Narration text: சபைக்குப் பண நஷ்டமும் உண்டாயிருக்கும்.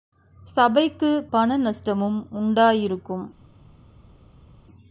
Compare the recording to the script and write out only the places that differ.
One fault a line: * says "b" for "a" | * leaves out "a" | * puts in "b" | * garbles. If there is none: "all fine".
all fine